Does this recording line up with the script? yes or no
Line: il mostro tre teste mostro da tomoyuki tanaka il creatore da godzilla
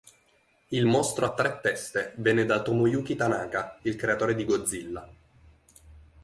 no